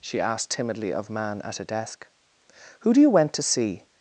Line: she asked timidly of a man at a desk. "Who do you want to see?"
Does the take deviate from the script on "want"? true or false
true